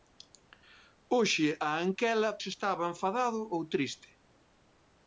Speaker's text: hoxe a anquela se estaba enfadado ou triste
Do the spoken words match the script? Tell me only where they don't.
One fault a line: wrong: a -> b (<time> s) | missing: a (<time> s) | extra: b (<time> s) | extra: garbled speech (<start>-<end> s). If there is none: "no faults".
no faults